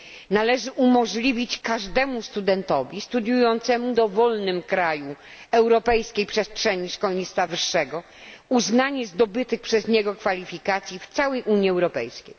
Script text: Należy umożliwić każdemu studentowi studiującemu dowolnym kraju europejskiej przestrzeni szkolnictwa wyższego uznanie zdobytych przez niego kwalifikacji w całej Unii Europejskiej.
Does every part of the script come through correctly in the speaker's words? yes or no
yes